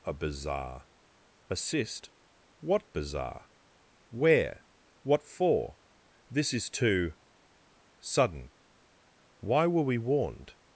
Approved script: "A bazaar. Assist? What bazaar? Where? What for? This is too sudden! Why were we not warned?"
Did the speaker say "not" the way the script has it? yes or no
no